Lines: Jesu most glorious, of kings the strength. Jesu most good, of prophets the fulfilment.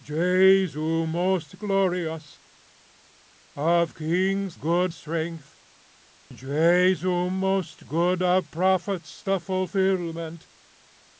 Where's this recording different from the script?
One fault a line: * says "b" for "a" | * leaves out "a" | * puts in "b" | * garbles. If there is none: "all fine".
* says "good" for "the"